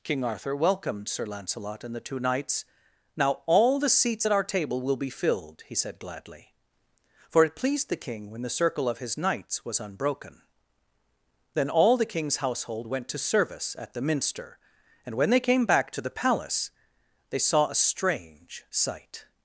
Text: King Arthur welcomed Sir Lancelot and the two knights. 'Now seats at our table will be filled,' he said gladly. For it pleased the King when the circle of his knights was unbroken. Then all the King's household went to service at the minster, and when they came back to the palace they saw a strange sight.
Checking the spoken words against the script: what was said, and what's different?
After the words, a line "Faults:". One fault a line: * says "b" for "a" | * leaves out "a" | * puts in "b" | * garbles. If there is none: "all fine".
King Arthur welcomed Sir Lancelot and the two knights. 'Now all the seats at our table will be filled,' he said gladly. For it pleased the King when the circle of his knights was unbroken. Then all the King's household went to service at the minster, and when they came back to the palace they saw a strange sight.
Faults:
* puts in "all the"